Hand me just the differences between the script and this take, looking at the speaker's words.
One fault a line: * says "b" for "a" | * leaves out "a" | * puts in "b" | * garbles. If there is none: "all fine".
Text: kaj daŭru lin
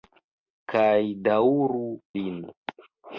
all fine